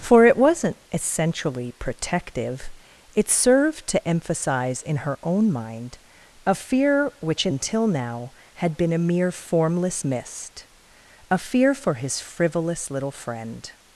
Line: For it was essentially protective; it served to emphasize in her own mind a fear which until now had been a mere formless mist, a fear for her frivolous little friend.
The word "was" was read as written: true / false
false